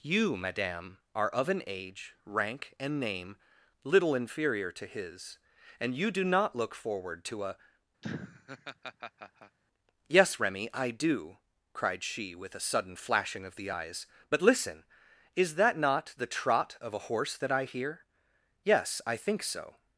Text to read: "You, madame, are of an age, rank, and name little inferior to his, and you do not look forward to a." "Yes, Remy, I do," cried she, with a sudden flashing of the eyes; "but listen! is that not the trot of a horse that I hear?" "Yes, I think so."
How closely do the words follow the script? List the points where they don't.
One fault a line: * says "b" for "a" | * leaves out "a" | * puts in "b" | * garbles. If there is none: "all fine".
all fine